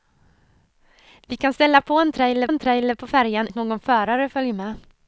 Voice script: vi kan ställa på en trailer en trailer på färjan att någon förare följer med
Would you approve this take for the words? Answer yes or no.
yes